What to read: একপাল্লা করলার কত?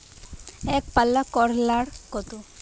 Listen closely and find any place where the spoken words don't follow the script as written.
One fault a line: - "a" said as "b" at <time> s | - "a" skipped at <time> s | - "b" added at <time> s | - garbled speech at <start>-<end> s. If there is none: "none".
none